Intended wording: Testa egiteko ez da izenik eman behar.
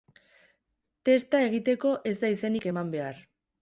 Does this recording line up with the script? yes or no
yes